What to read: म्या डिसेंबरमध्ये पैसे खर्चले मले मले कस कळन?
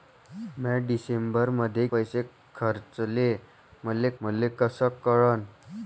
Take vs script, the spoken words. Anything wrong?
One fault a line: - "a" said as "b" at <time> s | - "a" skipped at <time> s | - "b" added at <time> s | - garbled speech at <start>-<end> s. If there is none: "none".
none